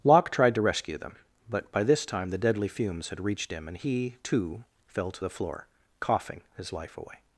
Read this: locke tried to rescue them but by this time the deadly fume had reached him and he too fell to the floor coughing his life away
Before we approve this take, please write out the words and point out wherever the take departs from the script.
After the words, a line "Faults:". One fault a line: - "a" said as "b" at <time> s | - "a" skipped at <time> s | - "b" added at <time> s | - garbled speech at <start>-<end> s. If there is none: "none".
locke tried to rescue them but by this time the deadly fumes had reached him and he too fell to the floor coughing his life away
Faults:
- "fume" said as "fumes" at 2.7 s